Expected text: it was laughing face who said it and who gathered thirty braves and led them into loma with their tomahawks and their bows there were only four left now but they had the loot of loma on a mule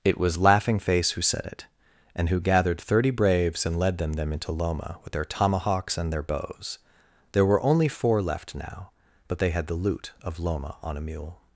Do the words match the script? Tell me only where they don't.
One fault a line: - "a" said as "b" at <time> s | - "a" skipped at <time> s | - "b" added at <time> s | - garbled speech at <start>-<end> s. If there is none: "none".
- "them" added at 4.1 s